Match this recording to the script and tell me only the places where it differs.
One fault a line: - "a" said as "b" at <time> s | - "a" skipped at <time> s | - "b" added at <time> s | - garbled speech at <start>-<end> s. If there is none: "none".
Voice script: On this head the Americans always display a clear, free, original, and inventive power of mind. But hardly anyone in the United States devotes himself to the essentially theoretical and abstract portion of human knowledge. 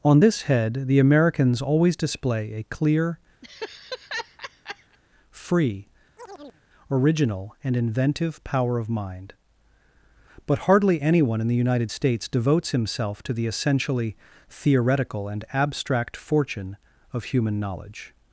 - "portion" said as "fortune" at 16.2 s